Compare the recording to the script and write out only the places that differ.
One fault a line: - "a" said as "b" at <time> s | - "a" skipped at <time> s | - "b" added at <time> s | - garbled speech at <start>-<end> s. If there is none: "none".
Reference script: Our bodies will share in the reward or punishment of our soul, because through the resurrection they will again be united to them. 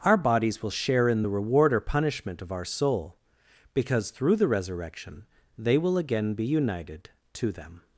none